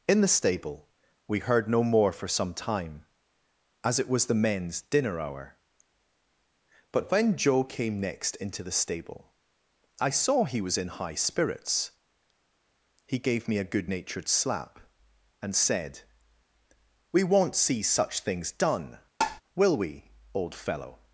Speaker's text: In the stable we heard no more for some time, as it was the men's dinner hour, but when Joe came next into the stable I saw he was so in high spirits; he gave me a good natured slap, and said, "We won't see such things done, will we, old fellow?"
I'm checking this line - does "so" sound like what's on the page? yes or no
no